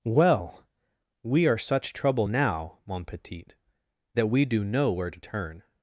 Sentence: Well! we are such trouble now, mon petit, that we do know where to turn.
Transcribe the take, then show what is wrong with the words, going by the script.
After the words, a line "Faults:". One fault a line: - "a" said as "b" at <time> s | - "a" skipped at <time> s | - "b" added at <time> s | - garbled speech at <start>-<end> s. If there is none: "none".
Well! we are such trouble now, mon petit, that we do know where to turn.
Faults:
none